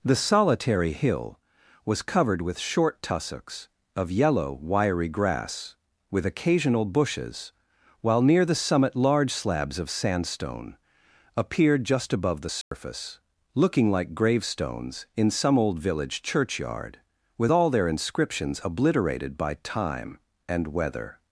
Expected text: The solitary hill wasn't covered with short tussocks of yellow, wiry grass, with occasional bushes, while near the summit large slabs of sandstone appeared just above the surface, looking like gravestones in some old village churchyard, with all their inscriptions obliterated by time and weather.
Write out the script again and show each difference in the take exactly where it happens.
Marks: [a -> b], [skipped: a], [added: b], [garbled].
The solitary hill [wasn't -> was] covered with short tussocks of yellow, wiry grass, with occasional bushes, while near the summit large slabs of sandstone appeared just above the surface, looking like gravestones in some old village churchyard, with all their inscriptions obliterated by time and weather.